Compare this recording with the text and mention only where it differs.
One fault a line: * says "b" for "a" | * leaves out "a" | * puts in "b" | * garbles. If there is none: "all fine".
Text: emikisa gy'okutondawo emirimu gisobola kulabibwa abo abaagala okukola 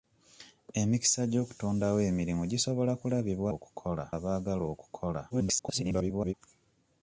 * says "okukola" for "abo"
* garbles